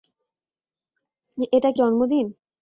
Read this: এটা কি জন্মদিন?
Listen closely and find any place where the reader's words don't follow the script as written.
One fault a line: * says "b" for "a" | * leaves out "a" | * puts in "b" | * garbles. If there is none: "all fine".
all fine